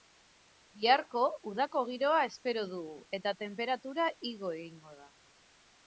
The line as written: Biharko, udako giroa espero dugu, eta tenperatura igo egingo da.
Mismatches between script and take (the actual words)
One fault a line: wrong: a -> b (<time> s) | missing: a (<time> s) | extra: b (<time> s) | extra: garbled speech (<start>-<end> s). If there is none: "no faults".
no faults